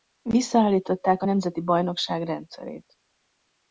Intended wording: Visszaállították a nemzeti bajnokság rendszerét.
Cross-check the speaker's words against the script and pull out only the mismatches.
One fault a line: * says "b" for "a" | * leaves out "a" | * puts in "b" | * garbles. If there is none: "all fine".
all fine